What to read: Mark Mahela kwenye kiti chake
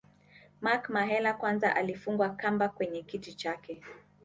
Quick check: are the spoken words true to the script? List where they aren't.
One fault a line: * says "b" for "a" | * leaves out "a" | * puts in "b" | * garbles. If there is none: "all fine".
* puts in "kwanza alifungwa kamba"